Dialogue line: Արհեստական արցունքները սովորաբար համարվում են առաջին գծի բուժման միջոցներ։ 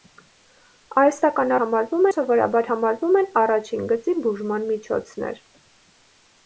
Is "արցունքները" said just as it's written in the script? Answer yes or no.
no